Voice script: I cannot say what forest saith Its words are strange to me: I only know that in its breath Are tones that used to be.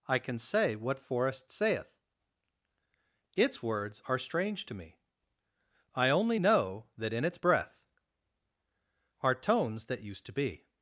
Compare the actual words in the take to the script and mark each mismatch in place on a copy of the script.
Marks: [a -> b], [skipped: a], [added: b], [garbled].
I [cannot -> can] say what forest saith Its words are strange to me: I only know that in its breath Are tones that used to be.